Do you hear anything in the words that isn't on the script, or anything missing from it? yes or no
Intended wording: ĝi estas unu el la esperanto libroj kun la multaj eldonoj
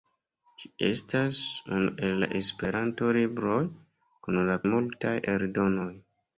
no